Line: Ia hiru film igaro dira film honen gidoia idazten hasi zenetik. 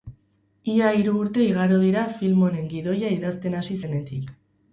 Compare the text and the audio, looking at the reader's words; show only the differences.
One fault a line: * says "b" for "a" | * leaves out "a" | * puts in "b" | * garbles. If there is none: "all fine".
* says "urte" for "film"